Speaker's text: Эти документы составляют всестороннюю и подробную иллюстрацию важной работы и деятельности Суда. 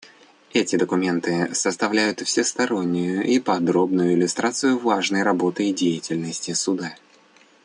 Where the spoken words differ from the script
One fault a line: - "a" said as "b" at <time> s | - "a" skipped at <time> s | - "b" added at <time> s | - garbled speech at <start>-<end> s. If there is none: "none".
none